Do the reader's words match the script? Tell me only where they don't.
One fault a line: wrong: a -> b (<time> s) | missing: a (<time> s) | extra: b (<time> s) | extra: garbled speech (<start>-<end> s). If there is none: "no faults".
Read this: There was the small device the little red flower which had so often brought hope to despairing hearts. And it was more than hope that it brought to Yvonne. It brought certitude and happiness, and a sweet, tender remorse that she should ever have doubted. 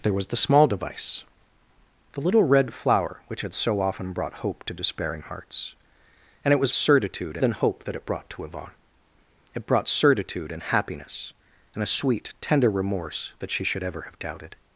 wrong: more -> certitude (6.7 s)